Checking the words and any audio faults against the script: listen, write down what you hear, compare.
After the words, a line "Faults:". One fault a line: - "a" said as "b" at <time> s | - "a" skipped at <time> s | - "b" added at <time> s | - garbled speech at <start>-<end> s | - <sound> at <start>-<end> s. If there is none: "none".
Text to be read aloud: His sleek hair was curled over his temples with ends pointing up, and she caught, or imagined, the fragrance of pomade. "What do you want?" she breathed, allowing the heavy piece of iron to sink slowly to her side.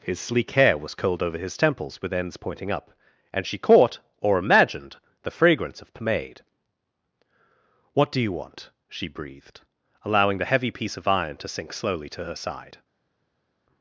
His sleek hair was curled over his temples with ends pointing up, and she caught, or imagined, the fragrance of pomade. "What do you want?" she breathed, allowing the heavy piece of iron to sink slowly to her side.
Faults:
none